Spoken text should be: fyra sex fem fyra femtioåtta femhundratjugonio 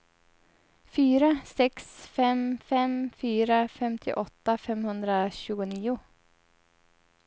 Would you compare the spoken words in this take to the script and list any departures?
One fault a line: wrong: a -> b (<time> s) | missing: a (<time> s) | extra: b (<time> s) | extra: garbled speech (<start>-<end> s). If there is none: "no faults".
extra: fem (2.6 s)